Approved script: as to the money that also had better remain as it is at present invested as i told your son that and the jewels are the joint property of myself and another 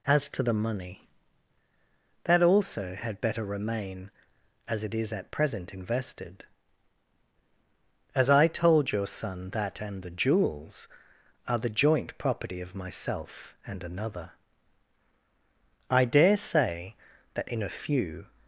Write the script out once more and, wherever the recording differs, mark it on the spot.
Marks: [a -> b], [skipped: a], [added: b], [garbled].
as to the money that also had better remain as it is at present invested as i told your son that and the jewels are the joint property of myself and another [added: i dare say that in a few]